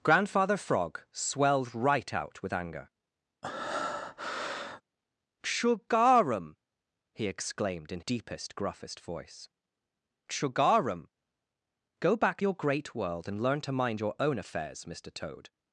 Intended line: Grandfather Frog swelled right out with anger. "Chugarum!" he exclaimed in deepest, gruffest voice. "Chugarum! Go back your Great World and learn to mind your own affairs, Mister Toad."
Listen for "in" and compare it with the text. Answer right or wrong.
right